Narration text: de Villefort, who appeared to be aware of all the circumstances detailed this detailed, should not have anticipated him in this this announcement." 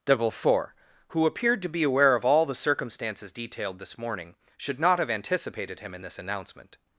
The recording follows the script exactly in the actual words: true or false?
false